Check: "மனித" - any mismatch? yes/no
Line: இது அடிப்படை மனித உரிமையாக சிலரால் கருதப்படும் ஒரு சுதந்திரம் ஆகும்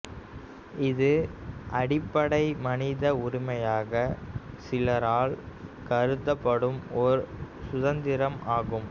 no